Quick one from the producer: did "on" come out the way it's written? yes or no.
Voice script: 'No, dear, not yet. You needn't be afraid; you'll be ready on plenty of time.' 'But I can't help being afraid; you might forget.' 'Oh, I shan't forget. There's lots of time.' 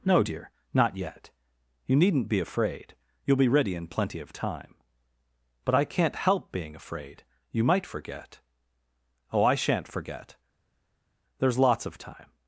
no